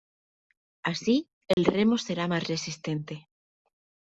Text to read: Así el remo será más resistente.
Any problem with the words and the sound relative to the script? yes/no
yes